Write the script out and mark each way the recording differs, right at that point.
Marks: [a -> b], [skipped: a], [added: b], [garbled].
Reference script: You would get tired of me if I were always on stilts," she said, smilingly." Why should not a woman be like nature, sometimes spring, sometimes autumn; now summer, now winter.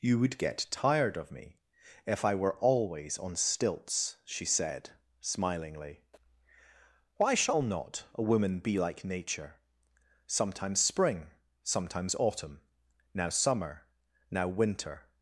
You would get tired of me if I were always on stilts," she said, smilingly." Why [should -> shall] not a woman be like nature, sometimes spring, sometimes autumn; now summer, now winter.